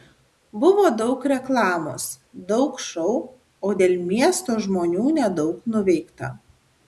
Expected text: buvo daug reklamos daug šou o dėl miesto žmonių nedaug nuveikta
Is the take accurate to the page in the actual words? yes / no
yes